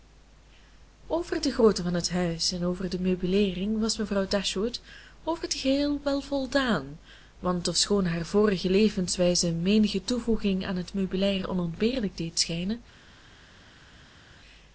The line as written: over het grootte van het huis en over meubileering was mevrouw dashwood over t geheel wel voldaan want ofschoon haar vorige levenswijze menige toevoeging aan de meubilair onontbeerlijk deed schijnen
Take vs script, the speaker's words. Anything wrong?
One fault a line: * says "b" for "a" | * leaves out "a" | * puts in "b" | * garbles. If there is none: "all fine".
* says "de" for "het"
* puts in "de"
* says "het" for "de"